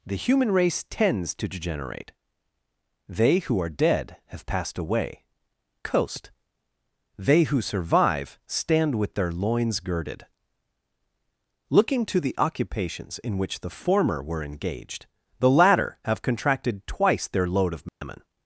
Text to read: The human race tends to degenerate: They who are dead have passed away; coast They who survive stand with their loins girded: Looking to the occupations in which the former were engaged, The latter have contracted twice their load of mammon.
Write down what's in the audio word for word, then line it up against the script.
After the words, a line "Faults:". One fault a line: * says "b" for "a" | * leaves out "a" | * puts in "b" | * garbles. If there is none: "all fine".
The human race tends to degenerate: They who are dead have passed away; coast They who survive stand with their loins girded: Looking to the occupations in which the former were engaged, The latter have contracted twice their load of mammon.
Faults:
all fine